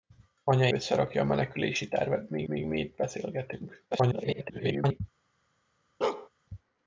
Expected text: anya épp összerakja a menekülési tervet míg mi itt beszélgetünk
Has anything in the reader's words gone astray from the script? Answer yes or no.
yes